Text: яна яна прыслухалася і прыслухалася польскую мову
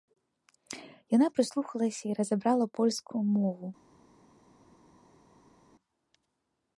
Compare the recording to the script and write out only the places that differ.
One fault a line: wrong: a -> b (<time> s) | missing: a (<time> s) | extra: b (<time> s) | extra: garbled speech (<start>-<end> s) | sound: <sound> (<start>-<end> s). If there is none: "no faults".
missing: яна (1.3 s)
wrong: прыслухалася -> разабрала (2.2 s)